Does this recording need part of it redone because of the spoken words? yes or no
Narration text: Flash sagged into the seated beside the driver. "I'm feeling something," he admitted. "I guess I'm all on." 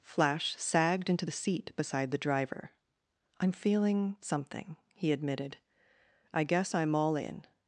yes